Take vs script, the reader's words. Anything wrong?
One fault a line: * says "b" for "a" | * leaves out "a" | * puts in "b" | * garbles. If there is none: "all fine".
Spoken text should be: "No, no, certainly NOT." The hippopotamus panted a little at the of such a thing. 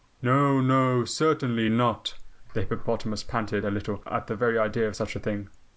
* puts in "very idea"